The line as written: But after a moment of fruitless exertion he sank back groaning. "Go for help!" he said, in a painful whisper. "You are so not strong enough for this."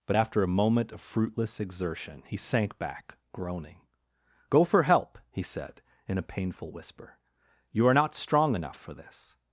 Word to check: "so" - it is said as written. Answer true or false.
false